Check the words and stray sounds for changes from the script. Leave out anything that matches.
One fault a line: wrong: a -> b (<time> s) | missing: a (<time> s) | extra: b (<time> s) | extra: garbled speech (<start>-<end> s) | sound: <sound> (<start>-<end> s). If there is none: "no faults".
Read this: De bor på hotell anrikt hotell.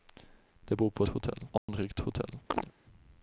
sound: dropout (1.6-1.7 s)
sound: chirp (2.5-2.7 s)